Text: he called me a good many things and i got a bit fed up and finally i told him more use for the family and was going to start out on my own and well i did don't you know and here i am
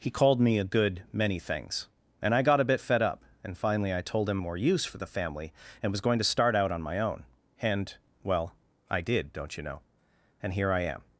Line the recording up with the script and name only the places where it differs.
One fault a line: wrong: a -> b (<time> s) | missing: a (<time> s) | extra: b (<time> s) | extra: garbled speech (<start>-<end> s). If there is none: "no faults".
no faults